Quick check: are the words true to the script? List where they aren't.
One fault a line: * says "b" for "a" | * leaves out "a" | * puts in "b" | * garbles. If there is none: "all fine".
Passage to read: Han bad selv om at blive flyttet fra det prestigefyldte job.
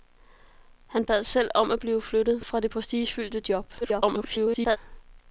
* garbles